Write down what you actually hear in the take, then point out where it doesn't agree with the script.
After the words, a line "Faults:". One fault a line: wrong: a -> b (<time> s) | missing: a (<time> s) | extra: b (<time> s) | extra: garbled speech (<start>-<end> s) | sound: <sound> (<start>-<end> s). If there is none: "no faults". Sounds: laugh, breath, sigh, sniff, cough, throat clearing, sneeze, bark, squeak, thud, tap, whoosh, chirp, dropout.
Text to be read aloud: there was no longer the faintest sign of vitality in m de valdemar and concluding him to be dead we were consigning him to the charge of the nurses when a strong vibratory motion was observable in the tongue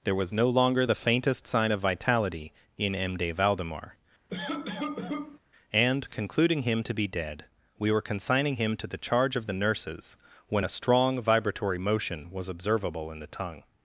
there was no longer the faintest sign of vitality in m de valdemar and concluding him to be dead we were consigning him to the charge of the nurses when a strong vibratory motion was observable in the tongue
Faults:
sound: cough (4.3-5.4 s)